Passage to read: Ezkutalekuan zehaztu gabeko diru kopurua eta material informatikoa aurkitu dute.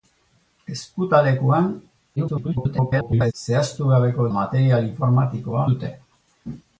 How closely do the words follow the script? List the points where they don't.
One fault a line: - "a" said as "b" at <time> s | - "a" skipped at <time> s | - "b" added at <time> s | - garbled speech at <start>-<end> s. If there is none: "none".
- garbled speech at 2.2-3.3 s
- "diru kopurua eta" skipped at 4.3 s
- "aurkitu" skipped at 5.7 s